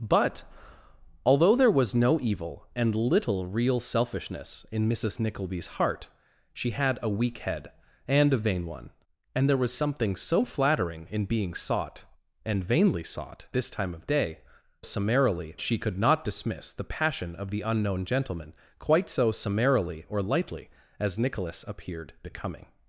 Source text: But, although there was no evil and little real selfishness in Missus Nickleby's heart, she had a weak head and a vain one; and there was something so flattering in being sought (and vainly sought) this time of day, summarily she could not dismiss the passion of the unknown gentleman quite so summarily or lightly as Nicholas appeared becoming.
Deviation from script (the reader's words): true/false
false